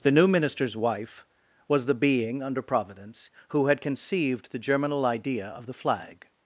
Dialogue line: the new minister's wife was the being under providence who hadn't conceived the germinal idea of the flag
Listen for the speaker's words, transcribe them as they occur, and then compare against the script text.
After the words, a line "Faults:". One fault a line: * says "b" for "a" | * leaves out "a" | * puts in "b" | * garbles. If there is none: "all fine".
the new minister's wife was the being under providence who had conceived the germinal idea of the flag
Faults:
* says "had" for "hadn't"